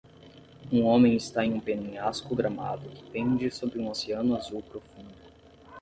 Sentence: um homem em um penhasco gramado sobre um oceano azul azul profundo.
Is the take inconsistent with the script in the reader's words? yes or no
yes